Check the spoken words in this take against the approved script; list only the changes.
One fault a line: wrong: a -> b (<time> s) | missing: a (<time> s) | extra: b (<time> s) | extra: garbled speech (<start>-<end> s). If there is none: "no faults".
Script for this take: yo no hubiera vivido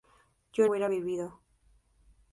missing: no (0.7 s)